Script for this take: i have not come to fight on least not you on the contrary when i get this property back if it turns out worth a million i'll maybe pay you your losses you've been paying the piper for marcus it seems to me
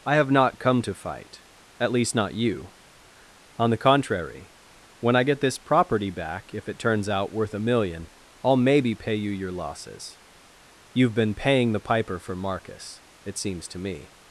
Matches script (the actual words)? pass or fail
fail